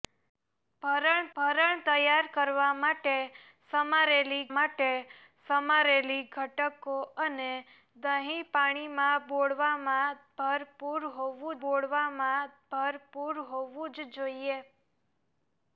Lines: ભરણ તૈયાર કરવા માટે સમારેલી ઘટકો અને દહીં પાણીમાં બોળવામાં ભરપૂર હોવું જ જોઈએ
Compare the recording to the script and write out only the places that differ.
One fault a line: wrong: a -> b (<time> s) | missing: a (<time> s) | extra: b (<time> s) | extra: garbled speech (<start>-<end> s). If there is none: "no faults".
extra: ભરણ (1.4 s)
extra: માટે સમારેલી (4.5 s)
extra: બોળવામાં ભરપૂર હોવું (11.6 s)